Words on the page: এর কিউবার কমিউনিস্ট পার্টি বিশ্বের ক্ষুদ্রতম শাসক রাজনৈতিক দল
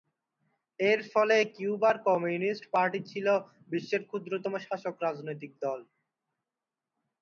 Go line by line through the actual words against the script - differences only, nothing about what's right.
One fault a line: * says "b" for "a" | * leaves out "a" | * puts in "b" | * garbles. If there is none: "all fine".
* puts in "ফলে"
* puts in "ছিল"